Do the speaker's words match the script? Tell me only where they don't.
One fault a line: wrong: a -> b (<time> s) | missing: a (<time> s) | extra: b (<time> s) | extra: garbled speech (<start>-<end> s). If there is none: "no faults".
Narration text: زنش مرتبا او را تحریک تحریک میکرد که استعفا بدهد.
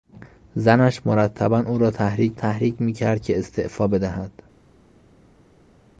no faults